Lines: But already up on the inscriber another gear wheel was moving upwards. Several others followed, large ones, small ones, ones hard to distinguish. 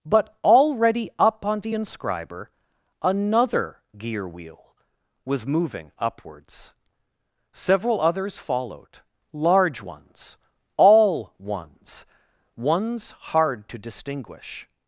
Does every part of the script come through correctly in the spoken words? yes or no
no